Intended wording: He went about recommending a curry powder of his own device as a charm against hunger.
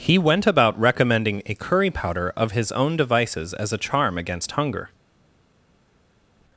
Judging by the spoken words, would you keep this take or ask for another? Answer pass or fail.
fail